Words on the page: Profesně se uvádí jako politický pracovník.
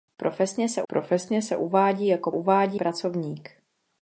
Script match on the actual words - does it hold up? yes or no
no